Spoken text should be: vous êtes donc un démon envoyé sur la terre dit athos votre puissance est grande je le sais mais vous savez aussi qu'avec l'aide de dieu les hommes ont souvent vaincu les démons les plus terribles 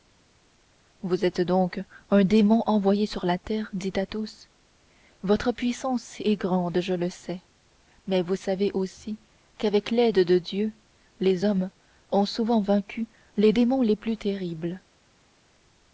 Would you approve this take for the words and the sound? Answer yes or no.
yes